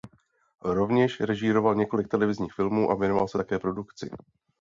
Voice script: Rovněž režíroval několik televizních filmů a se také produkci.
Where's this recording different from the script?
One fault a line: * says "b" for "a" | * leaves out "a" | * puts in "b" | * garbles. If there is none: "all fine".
* puts in "věnoval"